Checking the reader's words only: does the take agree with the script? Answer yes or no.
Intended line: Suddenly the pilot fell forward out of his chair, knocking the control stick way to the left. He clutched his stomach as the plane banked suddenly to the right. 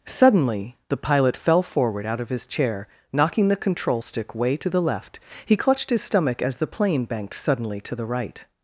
yes